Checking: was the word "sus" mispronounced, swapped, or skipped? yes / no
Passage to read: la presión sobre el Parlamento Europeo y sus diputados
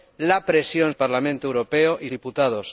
yes